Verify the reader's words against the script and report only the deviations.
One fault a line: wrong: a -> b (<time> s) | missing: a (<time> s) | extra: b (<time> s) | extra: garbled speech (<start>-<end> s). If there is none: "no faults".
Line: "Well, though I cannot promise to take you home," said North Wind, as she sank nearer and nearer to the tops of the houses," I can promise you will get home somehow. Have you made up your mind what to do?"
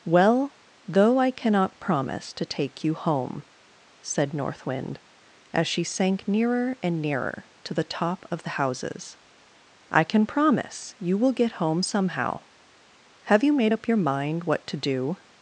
wrong: tops -> top (7.8 s)